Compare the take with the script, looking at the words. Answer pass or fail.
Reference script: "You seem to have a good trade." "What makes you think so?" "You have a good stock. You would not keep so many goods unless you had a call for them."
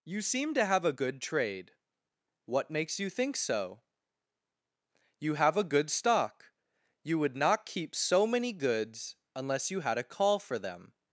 pass